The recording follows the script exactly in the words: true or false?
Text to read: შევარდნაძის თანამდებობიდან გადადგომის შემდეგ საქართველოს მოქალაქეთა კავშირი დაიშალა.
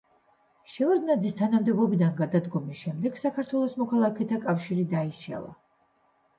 true